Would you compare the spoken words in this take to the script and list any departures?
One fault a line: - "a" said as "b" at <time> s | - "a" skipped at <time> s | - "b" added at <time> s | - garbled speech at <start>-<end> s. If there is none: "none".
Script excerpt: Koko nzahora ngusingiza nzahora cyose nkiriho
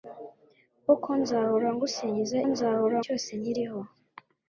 none